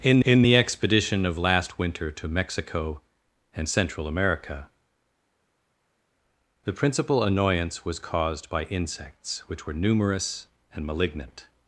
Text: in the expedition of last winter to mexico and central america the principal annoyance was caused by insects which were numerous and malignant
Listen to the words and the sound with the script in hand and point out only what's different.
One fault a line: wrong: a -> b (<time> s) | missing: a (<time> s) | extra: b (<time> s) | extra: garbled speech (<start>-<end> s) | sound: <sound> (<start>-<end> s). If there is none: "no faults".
extra: in (0.2 s)